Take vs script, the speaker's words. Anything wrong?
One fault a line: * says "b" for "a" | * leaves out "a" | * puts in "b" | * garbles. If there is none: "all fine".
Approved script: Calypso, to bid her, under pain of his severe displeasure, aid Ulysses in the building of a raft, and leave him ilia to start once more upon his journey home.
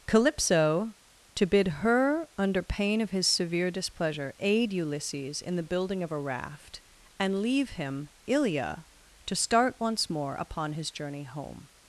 all fine